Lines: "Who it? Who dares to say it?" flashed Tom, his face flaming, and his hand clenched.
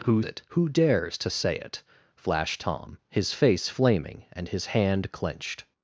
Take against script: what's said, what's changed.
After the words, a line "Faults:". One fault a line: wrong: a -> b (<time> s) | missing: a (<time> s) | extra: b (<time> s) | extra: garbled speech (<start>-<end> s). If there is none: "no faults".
"Who it? Who dares to say it?" flashed Tom, his face flaming, and his hand clenched.
Faults:
no faults